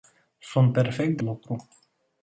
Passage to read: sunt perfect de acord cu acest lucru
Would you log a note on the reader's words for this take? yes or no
yes